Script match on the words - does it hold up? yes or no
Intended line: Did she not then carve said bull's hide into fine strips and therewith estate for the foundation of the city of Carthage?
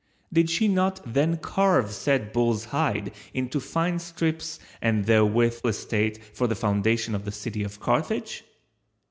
yes